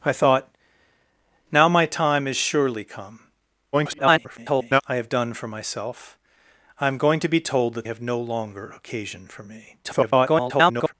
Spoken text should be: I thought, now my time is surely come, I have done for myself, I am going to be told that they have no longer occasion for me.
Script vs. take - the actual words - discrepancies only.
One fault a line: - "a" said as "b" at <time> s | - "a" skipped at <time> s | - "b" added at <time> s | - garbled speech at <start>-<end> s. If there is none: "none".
- garbled speech at 3.7-4.8 s
- "they" skipped at 7.9 s
- garbled speech at 9.8-10.9 s